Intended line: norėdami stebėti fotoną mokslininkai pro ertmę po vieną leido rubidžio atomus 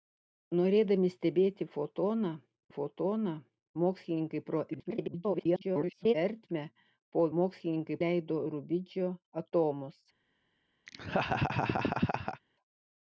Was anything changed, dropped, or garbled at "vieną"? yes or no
yes